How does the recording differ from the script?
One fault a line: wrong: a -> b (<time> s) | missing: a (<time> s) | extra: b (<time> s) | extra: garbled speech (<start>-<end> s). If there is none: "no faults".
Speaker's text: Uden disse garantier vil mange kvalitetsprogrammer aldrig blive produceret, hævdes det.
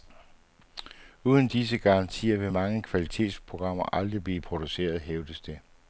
no faults